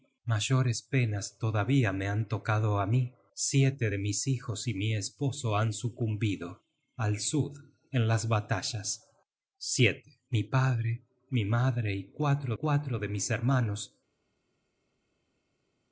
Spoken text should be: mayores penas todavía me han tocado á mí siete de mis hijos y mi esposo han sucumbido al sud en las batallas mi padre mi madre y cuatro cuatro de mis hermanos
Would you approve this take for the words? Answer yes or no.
yes